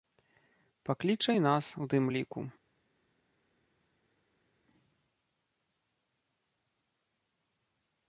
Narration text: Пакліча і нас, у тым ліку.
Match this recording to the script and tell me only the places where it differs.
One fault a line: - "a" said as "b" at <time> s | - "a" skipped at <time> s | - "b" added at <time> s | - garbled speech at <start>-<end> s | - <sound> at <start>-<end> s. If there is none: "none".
none